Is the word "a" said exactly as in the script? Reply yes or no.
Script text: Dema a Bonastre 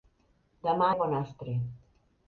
yes